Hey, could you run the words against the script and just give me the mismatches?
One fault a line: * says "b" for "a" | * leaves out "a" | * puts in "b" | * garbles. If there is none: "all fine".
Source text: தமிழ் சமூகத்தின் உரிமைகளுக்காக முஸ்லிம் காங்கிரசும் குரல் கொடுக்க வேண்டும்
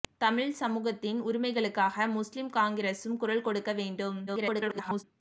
* garbles